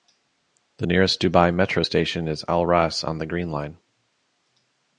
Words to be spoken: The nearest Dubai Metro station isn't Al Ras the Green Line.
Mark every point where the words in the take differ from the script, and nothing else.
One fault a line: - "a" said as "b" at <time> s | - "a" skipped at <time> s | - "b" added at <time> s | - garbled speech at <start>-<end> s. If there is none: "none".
- "isn't" said as "is" at 2.3 s
- "on" added at 3.0 s